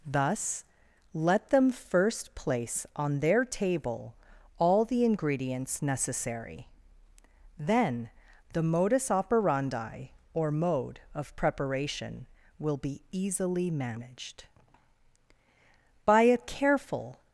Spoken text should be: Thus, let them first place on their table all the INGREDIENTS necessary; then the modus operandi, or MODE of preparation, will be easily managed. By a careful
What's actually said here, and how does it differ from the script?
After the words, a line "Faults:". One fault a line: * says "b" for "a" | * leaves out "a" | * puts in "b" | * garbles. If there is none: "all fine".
Thus, let them first place on their table all the INGREDIENTS necessary; then the modus operandi, or MODE of preparation, will be easily managed. By a careful
Faults:
all fine